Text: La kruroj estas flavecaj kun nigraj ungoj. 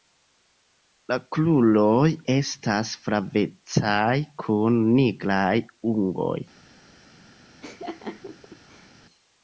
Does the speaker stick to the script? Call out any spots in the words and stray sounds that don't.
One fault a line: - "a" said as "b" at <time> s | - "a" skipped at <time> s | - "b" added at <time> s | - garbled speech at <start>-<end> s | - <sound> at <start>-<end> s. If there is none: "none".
- laugh at 7.6-8.9 s